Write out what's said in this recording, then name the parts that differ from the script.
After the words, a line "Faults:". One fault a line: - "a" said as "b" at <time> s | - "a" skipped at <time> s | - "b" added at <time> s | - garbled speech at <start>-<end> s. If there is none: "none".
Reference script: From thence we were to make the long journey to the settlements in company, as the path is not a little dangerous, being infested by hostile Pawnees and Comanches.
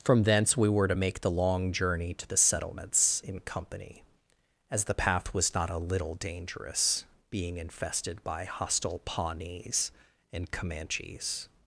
From thence we were to make the long journey to the settlements in company, as the path was not a little dangerous, being infested by hostile Pawnees and Comanches.
Faults:
- "is" said as "was" at 5.3 s